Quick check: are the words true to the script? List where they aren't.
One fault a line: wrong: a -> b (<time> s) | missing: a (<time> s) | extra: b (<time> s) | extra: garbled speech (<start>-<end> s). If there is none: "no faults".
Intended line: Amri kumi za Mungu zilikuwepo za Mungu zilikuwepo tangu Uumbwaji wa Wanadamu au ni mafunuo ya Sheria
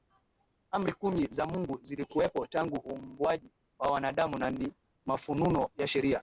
missing: za Mungu zilikuwepo (2.5 s)
wrong: au -> na (4.4 s)